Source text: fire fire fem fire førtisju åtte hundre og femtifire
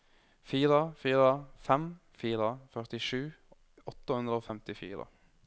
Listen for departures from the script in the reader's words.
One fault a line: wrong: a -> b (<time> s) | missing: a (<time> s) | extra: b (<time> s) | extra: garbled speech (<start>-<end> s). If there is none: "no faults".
no faults